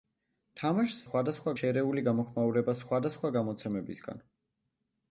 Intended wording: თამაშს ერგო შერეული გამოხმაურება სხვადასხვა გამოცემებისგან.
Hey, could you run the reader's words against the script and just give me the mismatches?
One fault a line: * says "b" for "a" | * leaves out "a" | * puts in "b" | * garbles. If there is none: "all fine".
* says "სხვადასხვა" for "ერგო"